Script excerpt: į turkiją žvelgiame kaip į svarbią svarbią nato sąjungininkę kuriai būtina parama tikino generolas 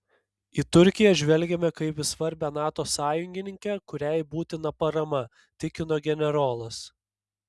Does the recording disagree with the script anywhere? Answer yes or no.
yes